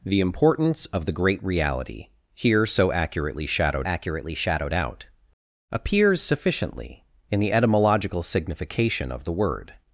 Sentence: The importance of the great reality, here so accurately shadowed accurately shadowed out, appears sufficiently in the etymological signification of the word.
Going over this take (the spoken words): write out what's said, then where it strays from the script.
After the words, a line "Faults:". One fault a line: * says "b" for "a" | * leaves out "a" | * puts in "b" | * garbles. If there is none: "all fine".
The importance of the great reality, here so accurately shadowed accurately shadowed out, appears sufficiently in the etymological signification of the word.
Faults:
all fine